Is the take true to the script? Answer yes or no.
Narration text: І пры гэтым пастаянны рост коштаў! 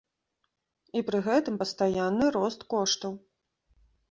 yes